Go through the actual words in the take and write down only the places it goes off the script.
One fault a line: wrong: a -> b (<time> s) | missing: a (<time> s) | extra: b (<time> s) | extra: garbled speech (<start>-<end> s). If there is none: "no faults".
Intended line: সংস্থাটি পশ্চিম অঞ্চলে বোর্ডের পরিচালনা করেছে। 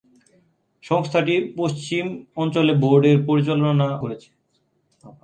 no faults